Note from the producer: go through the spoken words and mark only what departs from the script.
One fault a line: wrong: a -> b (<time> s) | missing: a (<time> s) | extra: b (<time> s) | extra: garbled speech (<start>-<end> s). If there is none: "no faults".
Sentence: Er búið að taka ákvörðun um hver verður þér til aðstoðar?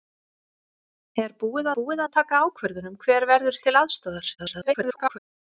extra: búið (1.8 s)
missing: þér (3.6 s)
extra: garbled speech (4.4-5.2 s)